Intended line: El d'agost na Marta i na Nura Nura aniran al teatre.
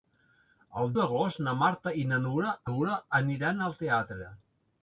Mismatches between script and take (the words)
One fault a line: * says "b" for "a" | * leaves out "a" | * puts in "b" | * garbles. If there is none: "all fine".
all fine